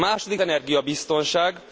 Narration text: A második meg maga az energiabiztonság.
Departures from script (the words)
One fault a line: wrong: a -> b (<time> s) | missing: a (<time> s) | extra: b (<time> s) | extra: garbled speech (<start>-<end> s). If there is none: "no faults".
missing: meg maga az (0.4 s)